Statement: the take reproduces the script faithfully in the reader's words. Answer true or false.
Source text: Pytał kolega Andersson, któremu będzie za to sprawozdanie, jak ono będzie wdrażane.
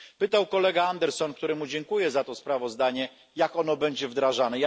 false